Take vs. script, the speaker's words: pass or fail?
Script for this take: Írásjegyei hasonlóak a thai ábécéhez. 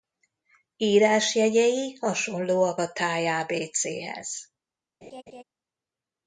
pass